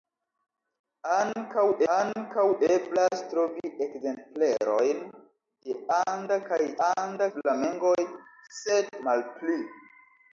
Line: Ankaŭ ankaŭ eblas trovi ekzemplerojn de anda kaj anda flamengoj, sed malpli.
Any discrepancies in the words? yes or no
no